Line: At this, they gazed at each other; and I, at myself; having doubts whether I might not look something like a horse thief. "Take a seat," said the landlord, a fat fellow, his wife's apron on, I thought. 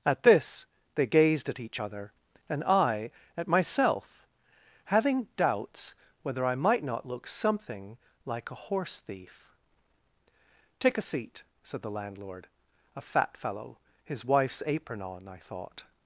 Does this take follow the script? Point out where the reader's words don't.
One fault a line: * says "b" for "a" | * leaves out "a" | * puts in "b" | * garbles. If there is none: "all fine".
all fine